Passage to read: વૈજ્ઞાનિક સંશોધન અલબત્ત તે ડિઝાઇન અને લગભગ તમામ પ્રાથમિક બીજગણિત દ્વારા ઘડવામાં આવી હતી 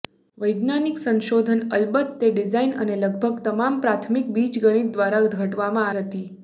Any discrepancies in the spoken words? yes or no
yes